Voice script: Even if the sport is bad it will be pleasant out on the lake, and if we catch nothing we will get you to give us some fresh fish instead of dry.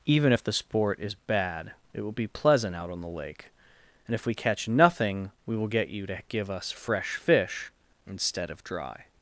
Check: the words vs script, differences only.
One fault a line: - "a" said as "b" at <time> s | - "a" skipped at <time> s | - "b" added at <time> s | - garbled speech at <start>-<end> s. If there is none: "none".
- "some" skipped at 6.7 s